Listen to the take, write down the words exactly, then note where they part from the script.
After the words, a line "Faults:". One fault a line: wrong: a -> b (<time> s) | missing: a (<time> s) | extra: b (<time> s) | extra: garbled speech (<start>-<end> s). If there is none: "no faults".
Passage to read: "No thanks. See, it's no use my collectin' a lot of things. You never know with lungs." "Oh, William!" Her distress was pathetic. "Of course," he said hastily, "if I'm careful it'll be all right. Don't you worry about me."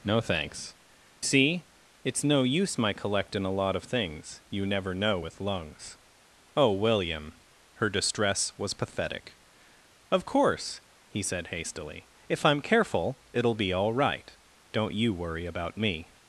"No thanks. See, it's no use my collectin' a lot of things. You never know with lungs." "Oh, William!" Her distress was pathetic. "Of course," he said hastily, "if I'm careful it'll be all right. Don't you worry about me."
Faults:
no faults